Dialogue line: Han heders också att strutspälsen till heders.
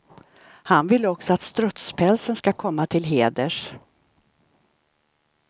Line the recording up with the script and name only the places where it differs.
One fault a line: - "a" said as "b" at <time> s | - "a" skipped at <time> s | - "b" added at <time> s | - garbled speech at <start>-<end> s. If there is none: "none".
- "heders" said as "vill" at 0.9 s
- "ska komma" added at 2.4 s